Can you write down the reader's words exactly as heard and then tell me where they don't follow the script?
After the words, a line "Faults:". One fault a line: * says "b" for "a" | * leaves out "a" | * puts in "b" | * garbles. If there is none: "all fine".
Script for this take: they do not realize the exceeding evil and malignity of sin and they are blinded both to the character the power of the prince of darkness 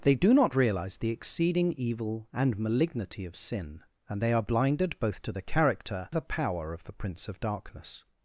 they do not realize the exceeding evil and malignity of sin and they are blinded both to the character the power of the prince of darkness
Faults:
all fine